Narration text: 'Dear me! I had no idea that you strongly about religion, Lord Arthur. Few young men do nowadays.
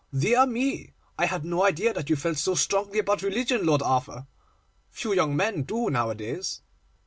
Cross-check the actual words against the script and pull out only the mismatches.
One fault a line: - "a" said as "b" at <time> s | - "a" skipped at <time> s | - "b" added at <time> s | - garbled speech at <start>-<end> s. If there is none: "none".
- "felt so" added at 2.1 s